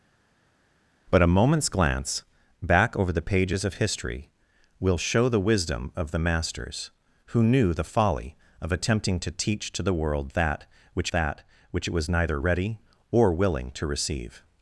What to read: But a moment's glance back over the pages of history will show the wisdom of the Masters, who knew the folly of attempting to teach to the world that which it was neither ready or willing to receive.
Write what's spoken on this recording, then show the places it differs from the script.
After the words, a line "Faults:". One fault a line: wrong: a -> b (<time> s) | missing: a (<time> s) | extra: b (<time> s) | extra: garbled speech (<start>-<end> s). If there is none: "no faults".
But a moment's glance back over the pages of history will show the wisdom of the Masters, who knew the folly of attempting to teach to the world that which that which it was neither ready or willing to receive.
Faults:
extra: that which (11.1 s)